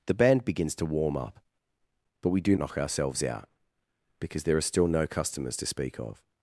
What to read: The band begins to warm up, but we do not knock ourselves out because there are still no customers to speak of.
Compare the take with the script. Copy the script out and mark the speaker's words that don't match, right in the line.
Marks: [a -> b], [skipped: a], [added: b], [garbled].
The band begins to warm up, but we do [skipped: not] knock ourselves out because there are still no customers to speak of.